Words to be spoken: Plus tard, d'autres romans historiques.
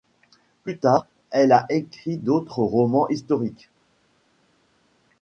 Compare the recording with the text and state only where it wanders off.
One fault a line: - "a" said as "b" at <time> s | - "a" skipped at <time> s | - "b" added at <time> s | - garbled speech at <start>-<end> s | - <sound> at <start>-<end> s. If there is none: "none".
- "elle a écrit" added at 1.3 s